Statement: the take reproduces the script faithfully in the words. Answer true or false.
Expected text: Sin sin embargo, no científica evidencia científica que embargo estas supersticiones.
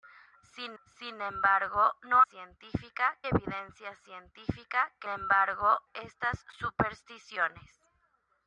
true